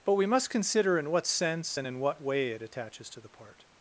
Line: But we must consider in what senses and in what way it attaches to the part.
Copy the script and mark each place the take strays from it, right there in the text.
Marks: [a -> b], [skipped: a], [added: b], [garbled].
But we must consider in what [senses -> sense] and in what way it attaches to the part.